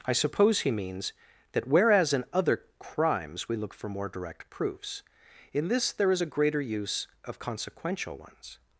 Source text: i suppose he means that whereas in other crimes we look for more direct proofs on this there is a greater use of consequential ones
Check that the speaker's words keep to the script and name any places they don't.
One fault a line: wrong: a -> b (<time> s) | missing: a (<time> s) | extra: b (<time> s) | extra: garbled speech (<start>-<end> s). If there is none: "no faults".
wrong: on -> in (5.5 s)